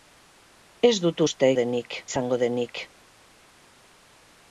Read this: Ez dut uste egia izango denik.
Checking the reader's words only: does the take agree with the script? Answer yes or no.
no